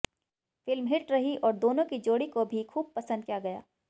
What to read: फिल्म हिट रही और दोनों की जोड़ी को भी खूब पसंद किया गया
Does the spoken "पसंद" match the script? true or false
true